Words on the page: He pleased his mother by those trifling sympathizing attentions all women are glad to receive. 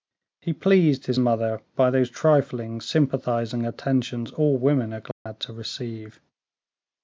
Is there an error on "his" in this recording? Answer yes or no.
no